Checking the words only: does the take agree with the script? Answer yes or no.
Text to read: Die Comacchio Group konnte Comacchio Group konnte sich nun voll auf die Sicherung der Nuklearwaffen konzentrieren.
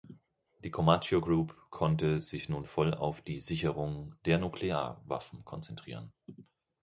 no